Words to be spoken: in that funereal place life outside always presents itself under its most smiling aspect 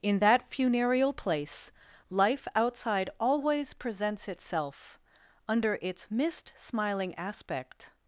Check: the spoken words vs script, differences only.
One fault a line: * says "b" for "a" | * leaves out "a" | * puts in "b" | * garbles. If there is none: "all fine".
* says "mist" for "most"